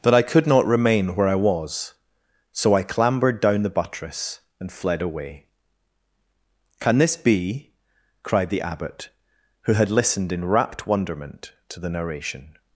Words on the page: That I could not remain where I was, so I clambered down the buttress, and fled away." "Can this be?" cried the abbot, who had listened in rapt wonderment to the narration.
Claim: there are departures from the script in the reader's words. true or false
false